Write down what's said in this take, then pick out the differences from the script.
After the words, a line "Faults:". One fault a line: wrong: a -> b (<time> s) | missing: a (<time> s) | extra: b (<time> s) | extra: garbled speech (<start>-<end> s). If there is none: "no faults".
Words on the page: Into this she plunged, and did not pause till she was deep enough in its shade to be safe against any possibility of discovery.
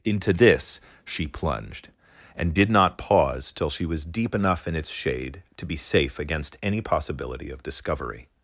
Into this she plunged, and did not pause till she was deep enough in its shade to be safe against any possibility of discovery.
Faults:
no faults